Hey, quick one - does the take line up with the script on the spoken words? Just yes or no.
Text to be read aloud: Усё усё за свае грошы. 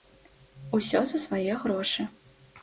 no